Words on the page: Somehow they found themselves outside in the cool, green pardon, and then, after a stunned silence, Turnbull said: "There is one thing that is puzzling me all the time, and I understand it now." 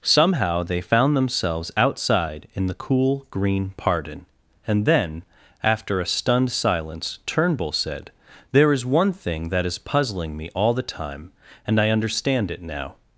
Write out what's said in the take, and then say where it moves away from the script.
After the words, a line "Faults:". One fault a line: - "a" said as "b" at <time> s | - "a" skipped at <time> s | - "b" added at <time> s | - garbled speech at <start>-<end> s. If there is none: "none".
Somehow they found themselves outside in the cool, green pardon, and then, after a stunned silence, Turnbull said: "There is one thing that is puzzling me all the time, and I understand it now."
Faults:
none